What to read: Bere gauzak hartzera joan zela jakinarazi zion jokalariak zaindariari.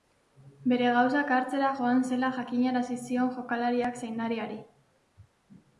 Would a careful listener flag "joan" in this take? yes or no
no